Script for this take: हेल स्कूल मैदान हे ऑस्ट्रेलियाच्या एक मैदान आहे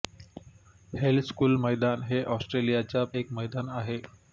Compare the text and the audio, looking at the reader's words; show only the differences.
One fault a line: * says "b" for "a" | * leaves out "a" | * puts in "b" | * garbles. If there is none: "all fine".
all fine